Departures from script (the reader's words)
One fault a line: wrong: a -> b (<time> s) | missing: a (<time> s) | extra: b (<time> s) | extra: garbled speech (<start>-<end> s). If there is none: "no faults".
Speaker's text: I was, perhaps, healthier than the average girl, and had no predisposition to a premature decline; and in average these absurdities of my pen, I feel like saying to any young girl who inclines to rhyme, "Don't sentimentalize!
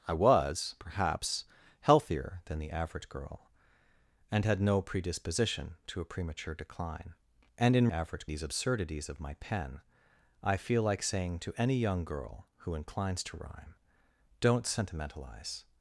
no faults